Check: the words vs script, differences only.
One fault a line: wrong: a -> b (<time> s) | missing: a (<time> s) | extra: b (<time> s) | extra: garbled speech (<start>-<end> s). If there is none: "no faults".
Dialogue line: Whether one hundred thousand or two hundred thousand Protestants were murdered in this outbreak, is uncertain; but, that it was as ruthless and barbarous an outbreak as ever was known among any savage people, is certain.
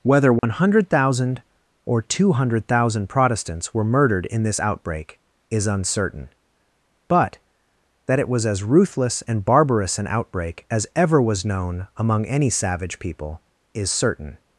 no faults